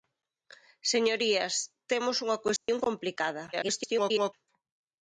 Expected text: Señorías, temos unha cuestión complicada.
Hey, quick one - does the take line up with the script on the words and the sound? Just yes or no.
no